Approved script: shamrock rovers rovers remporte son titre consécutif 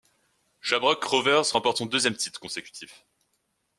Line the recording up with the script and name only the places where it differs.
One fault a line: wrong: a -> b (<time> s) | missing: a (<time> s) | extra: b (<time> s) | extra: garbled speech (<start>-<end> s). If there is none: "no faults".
missing: rovers (1.5 s)
extra: deuxième (1.8 s)